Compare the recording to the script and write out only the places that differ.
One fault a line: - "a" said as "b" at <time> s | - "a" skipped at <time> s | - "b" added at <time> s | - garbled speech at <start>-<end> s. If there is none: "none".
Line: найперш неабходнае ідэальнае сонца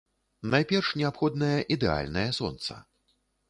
none